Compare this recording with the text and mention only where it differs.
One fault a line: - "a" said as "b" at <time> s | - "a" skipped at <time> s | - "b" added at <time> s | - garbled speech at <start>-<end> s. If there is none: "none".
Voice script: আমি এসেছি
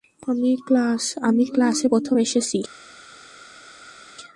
- "ক্লাসে প্রথম" added at 1.5 s